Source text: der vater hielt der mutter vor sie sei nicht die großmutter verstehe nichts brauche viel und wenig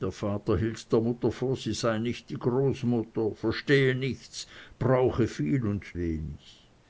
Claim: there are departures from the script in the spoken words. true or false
false